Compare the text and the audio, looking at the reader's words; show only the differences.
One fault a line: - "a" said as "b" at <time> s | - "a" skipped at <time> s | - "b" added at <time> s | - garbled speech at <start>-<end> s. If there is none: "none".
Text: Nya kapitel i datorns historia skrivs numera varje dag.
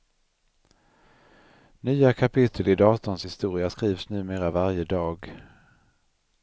none